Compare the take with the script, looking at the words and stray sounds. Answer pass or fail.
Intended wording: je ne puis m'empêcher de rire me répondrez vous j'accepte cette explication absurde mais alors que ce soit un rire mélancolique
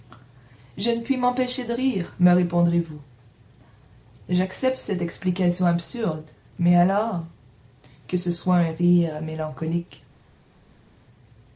pass